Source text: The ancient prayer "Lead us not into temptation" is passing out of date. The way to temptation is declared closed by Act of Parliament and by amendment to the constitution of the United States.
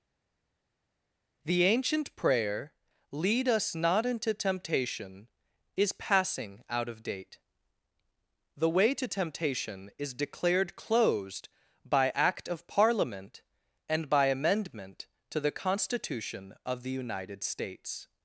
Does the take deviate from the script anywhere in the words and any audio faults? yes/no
no